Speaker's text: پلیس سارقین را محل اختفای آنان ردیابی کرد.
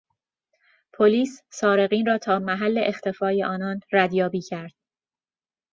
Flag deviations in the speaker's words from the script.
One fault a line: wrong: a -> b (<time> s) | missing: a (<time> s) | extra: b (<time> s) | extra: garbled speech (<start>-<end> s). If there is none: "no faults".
extra: تا (2.2 s)